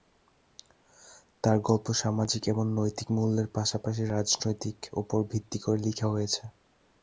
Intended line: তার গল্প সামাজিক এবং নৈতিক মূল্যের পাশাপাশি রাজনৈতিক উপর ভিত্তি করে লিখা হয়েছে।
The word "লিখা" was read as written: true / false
true